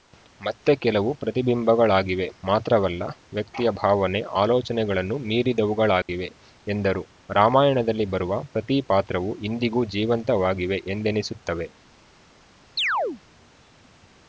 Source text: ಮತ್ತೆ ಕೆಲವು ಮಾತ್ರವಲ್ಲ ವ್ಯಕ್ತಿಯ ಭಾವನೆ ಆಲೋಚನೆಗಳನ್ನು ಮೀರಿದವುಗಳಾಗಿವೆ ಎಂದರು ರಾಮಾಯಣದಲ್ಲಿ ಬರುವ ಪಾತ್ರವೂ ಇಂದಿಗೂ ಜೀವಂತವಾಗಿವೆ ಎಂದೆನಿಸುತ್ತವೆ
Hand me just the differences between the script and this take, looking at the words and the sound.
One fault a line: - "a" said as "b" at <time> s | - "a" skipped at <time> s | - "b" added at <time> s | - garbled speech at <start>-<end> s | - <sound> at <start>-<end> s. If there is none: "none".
- "ಪ್ರತಿಬಿಂಬಗಳಾಗಿವೆ" added at 1.1 s
- dropout at 6.0-6.1 s
- "ಪ್ರತಿ" added at 8.5 s
- chirp at 12.8-13.2 s